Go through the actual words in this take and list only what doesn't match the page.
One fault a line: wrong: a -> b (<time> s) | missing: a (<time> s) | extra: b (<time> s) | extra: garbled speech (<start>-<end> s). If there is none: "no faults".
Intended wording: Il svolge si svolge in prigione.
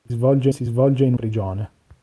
no faults